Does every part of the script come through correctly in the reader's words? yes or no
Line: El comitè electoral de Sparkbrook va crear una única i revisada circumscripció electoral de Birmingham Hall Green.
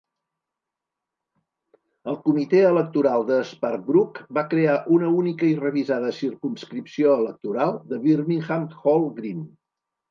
yes